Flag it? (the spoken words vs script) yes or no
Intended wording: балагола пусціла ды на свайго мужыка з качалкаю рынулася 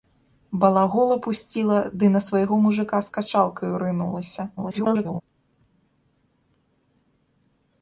yes